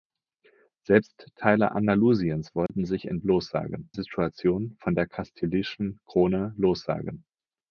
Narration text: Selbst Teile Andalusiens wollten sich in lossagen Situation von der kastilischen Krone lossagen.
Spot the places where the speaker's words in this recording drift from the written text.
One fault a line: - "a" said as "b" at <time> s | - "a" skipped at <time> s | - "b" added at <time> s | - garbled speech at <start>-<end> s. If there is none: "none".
none